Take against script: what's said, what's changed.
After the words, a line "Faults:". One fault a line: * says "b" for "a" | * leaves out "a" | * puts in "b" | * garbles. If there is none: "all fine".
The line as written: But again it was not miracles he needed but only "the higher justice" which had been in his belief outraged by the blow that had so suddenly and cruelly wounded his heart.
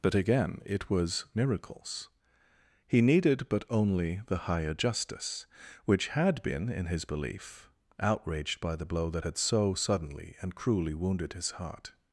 But again it was miracles he needed but only "the higher justice" which had been in his belief outraged by the blow that had so suddenly and cruelly wounded his heart.
Faults:
* leaves out "not"